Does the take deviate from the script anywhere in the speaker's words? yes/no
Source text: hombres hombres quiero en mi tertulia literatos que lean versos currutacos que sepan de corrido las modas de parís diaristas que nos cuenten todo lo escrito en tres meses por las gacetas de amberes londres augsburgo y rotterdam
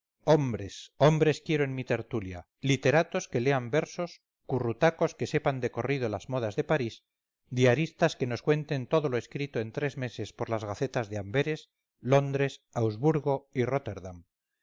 no